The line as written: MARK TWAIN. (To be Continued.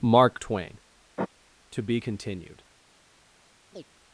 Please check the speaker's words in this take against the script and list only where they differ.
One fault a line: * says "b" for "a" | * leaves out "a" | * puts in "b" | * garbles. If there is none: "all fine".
all fine